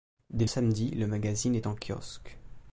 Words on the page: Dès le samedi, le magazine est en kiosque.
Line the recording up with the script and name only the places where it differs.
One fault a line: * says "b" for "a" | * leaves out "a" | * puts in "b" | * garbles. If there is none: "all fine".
* leaves out "le"